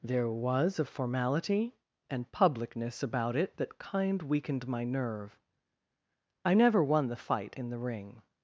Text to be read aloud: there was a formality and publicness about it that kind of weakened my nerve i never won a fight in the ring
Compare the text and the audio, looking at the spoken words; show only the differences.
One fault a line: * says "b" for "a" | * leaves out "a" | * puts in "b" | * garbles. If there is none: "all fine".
* leaves out "of"
* says "the" for "a"